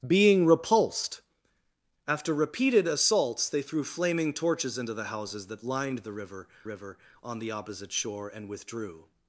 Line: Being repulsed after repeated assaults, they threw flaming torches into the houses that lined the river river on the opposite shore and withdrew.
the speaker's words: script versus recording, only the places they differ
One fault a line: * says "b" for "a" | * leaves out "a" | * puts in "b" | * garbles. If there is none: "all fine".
all fine